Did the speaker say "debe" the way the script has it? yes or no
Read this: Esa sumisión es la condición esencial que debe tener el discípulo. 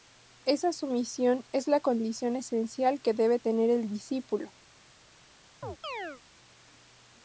yes